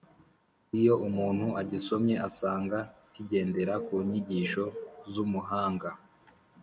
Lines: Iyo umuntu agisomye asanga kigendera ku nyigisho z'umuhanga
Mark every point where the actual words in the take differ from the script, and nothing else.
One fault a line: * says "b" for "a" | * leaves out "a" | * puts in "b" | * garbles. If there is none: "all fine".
all fine